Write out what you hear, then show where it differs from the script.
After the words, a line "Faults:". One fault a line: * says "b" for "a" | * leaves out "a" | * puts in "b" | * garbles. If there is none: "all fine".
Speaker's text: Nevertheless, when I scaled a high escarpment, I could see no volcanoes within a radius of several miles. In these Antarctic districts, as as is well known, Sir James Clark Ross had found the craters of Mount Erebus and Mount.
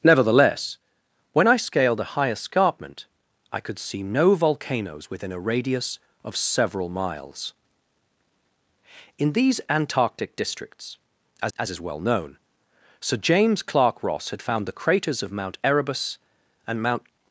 Nevertheless, when I scaled a high escarpment, I could see no volcanoes within a radius of several miles. In these Antarctic districts, as as is well known, Sir James Clark Ross had found the craters of Mount Erebus and Mount.
Faults:
all fine